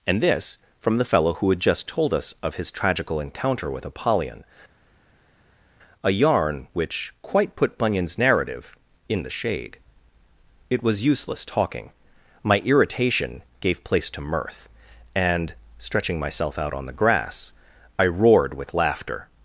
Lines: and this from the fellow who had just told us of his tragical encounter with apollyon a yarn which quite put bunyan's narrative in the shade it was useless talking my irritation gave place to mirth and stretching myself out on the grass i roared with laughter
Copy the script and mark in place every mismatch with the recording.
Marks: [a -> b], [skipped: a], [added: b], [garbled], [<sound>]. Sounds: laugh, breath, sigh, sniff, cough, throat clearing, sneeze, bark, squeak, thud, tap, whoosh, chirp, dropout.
and this from the fellow who had just told us of his tragical encounter with apollyon a yarn which quite put bunyan's narrative in the shade it was useless talking my irritation gave place to mirth and stretching myself out on the grass i roared with laughter